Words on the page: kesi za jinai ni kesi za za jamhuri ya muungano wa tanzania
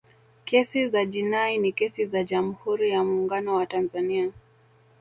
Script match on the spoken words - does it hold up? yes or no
no